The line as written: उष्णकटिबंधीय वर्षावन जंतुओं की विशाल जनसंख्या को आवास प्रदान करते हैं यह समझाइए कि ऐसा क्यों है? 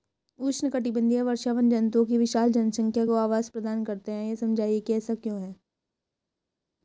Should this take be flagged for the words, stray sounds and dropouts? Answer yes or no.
no